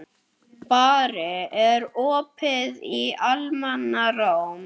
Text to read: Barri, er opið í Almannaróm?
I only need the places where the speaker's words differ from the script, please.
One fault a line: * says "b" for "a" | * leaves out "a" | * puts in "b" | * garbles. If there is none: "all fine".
all fine